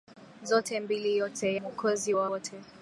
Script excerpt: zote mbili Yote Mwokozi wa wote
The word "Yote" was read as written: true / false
true